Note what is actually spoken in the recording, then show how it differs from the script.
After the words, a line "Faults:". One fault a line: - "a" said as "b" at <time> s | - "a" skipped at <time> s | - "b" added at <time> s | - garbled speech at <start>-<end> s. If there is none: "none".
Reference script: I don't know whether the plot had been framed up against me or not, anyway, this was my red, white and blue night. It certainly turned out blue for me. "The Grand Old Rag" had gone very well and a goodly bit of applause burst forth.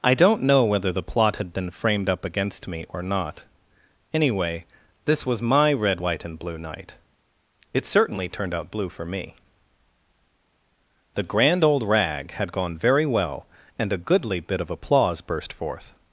I don't know whether the plot had been framed up against me or not, anyway, this was my red, white and blue night. It certainly turned out blue for me. "The Grand Old Rag" had gone very well and a goodly bit of applause burst forth.
Faults:
none